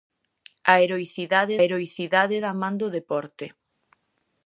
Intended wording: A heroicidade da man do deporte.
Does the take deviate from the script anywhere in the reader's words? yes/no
yes